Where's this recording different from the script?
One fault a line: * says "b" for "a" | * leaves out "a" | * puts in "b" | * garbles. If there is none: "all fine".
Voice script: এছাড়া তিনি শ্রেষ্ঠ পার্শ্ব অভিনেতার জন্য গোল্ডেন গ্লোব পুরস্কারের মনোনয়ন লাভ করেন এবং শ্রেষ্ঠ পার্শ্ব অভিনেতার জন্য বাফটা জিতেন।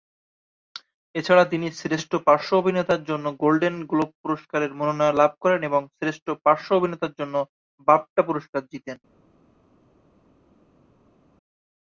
* puts in "পুরস্কার"